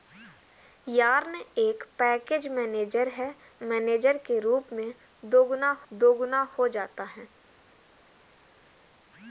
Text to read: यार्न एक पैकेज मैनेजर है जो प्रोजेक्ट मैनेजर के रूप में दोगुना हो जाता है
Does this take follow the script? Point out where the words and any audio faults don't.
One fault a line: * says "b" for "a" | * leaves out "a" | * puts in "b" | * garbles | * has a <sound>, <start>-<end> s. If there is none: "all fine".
* leaves out "जो प्रोजेक्ट"
* puts in "दोगुना"